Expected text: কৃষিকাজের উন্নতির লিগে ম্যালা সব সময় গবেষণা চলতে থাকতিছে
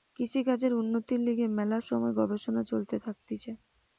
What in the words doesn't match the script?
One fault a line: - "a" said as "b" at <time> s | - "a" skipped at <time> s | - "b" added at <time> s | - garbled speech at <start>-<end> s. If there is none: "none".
- "সব" skipped at 1.8 s